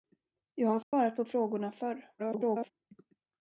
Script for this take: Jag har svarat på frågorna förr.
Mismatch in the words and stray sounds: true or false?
true